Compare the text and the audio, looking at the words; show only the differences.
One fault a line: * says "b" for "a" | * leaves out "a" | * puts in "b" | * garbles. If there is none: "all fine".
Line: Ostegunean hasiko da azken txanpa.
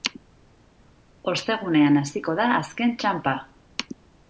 all fine